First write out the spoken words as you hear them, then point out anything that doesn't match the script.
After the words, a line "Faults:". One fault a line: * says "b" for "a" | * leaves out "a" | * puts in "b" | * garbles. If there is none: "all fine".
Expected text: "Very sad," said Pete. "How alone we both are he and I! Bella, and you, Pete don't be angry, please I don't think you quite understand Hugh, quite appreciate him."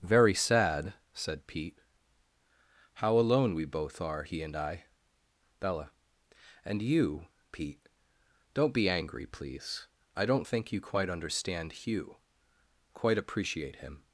"Very sad," said Pete. "How alone we both are he and I! Bella, and you, Pete don't be angry, please I don't think you quite understand Hugh, quite appreciate him."
Faults:
all fine